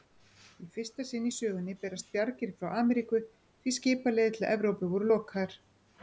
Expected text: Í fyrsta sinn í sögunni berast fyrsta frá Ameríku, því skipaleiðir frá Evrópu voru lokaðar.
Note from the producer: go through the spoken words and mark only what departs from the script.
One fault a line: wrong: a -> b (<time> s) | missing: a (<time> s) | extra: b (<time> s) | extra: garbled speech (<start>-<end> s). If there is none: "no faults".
wrong: fyrsta -> bjargir (2.1 s)
wrong: frá -> til (4.4 s)